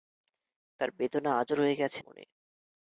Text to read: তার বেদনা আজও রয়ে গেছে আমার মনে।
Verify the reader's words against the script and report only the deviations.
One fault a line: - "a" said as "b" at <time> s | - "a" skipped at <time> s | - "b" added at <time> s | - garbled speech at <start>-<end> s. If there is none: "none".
- "আমার" skipped at 2.0 s